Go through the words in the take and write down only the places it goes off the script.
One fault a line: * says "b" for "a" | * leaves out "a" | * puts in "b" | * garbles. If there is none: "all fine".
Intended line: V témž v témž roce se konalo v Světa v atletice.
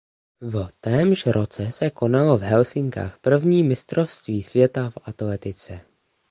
* leaves out "v témž"
* puts in "Helsinkách první mistrovství"